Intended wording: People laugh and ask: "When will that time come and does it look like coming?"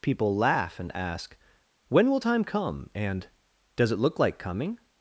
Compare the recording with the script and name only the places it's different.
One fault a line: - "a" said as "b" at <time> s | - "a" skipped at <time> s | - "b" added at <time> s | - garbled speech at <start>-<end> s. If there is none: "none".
- "that" skipped at 2.2 s